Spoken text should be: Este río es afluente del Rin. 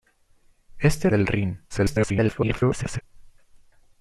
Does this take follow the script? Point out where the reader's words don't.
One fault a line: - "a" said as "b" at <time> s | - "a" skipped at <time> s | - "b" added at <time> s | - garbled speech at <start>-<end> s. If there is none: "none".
- "río es afluente" skipped at 1.1 s
- garbled speech at 1.7-3.0 s